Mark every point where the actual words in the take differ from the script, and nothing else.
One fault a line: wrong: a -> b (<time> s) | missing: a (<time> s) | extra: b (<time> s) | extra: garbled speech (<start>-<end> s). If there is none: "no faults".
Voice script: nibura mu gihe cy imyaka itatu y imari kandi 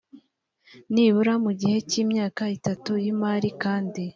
no faults